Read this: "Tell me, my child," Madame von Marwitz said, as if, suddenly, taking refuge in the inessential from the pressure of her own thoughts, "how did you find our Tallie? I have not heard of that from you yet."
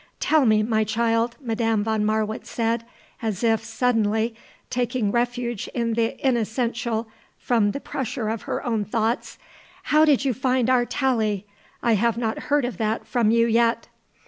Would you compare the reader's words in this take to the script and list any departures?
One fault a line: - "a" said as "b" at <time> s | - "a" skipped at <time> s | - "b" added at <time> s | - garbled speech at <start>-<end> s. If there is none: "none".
none